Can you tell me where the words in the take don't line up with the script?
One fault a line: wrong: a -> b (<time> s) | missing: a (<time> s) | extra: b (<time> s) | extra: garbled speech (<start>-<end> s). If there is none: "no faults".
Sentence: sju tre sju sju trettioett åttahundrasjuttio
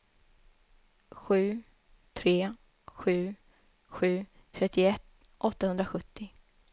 no faults